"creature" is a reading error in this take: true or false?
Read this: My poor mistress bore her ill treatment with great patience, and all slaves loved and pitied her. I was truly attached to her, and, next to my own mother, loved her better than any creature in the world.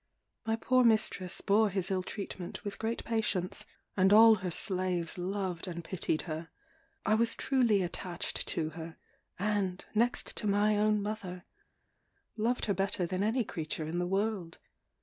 false